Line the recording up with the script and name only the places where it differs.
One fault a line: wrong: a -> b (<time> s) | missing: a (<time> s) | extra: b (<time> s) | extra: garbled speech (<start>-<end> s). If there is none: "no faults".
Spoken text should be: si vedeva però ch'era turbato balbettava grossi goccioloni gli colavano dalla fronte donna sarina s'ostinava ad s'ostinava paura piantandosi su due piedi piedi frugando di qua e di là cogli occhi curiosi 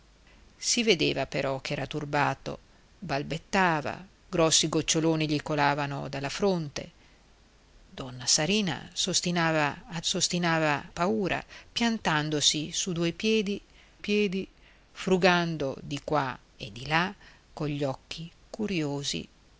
no faults